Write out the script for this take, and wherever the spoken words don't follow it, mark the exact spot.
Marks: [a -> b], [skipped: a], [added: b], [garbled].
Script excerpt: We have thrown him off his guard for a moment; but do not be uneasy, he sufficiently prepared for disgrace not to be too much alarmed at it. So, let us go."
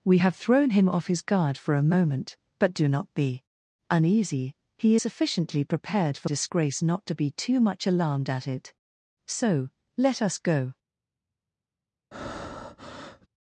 We have thrown him off his guard for a moment; but do not be uneasy, he sufficiently prepared for disgrace not to be too much alarmed at it. So, let us go."